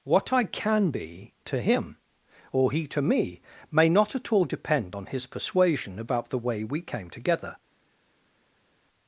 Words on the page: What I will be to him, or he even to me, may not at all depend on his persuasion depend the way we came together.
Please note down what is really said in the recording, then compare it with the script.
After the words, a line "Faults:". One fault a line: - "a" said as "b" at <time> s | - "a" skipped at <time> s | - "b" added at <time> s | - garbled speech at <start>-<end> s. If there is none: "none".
What I can be to him, or he to me, may not at all depend on his persuasion about the way we came together.
Faults:
- "will" said as "can" at 0.5 s
- "even" skipped at 2.9 s
- "depend" said as "about" at 6.0 s